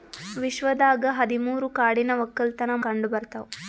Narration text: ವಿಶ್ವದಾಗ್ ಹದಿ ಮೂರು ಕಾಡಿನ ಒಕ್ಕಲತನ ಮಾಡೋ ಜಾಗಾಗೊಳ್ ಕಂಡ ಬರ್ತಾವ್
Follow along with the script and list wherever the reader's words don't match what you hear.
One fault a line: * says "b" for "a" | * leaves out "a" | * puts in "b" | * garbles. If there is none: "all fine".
* leaves out "ಮಾಡೋ ಜಾಗಾಗೊಳ್"